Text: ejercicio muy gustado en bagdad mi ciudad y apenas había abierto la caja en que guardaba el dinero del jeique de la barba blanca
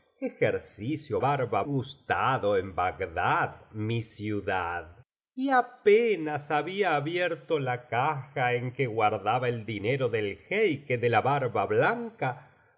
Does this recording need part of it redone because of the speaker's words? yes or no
yes